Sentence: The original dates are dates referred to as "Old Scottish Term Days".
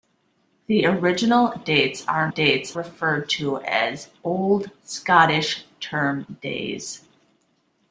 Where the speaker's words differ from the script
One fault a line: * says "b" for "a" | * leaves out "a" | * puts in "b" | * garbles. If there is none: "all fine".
all fine